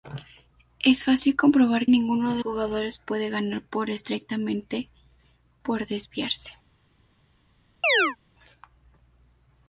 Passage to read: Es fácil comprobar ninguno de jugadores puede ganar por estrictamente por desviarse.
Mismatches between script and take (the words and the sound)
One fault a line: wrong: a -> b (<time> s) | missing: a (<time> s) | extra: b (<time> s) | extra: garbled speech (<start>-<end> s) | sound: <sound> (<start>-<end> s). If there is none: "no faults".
sound: chirp (7.8-8.2 s)